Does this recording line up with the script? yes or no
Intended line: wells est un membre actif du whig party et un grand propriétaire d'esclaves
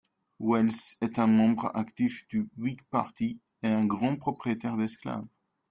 yes